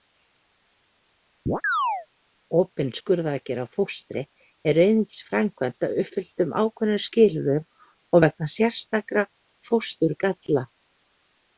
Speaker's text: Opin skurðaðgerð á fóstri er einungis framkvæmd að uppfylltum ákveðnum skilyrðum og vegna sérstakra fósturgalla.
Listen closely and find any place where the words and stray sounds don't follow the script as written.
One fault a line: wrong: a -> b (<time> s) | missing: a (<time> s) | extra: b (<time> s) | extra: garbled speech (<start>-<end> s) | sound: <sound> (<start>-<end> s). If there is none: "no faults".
sound: chirp (1.5-2.1 s)